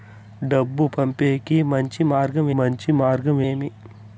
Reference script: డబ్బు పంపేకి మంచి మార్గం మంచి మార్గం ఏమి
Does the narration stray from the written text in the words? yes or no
no